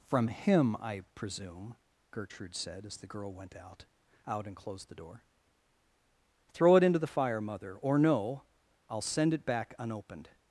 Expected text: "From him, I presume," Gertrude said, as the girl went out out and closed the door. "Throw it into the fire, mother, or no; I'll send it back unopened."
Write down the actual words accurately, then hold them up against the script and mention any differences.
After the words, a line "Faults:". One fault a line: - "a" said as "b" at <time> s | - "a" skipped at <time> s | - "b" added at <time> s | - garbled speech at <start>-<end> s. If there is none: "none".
"From him, I presume," Gertrude said, as the girl went out out and closed the door. "Throw it into the fire, mother, or no; I'll send it back unopened."
Faults:
none